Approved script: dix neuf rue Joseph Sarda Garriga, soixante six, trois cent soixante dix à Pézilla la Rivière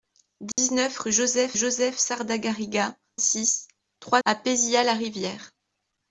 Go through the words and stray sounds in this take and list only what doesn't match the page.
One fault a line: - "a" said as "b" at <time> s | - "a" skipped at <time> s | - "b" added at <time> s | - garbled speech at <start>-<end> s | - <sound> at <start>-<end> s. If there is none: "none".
- dropout at 0.5-0.6 s
- "Joseph" added at 1.5 s
- "soixante" skipped at 3.0 s
- "cent soixante dix" skipped at 4.2 s